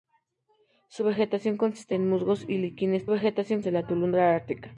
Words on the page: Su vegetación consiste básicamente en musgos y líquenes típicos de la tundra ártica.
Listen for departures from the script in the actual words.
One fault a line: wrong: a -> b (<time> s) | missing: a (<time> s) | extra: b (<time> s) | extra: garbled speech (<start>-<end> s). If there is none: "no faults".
missing: básicamente (1.9 s)
wrong: típicos -> vegetación (3.1 s)